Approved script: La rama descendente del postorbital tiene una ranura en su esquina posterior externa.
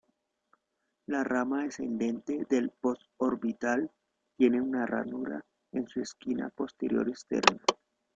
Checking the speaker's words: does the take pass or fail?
pass